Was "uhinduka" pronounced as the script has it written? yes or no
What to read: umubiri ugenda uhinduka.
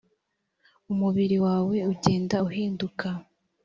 yes